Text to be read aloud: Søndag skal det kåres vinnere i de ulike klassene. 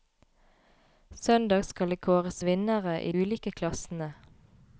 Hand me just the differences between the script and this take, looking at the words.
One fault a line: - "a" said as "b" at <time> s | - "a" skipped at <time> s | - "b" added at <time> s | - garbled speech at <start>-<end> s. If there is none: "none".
- "de" skipped at 3.1 s